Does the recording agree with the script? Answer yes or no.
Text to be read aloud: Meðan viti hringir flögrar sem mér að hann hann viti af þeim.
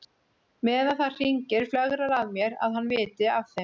no